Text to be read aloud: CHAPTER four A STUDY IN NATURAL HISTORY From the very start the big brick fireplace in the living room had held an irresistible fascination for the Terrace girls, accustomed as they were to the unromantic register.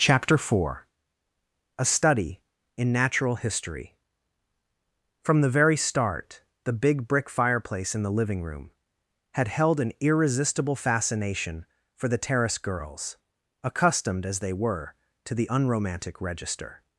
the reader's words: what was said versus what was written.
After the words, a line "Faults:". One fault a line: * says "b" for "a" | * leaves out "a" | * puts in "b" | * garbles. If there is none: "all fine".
CHAPTER four A STUDY IN NATURAL HISTORY From the very start the big brick fireplace in the living room had held an irresistible fascination for the Terrace girls, accustomed as they were to the unromantic register.
Faults:
all fine